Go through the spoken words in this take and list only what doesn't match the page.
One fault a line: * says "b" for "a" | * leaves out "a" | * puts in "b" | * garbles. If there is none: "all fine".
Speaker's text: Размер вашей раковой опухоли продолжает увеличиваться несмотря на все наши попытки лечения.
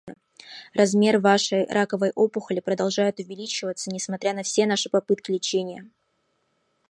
all fine